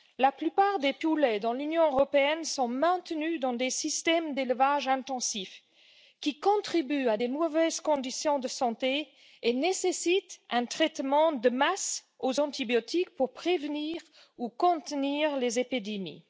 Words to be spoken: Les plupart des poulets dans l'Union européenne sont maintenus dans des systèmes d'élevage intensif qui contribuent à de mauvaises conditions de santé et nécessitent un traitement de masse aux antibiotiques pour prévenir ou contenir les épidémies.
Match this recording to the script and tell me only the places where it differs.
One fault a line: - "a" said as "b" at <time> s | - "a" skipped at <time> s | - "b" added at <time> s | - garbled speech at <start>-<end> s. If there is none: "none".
- "Les" said as "La" at 0.2 s